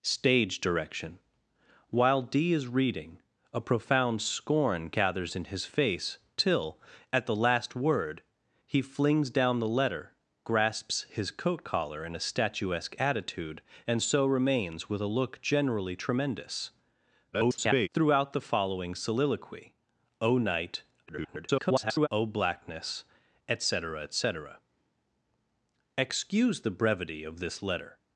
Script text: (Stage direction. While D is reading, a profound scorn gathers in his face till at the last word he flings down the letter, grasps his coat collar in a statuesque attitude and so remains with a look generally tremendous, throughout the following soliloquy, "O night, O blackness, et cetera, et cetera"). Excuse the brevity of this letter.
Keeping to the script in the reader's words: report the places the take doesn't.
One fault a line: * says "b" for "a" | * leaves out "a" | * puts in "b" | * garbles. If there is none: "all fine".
* garbles
* garbles